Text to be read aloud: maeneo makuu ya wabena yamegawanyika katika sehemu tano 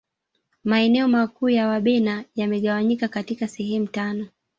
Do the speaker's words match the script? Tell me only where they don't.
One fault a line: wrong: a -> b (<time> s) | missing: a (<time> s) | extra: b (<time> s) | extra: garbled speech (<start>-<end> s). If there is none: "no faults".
no faults